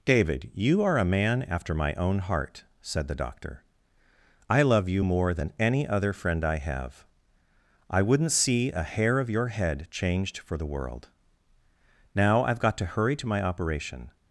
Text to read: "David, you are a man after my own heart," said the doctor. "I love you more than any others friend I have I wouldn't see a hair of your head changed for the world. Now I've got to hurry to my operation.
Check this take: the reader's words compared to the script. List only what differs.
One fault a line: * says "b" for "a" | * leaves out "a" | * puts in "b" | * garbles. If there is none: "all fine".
* says "other" for "others"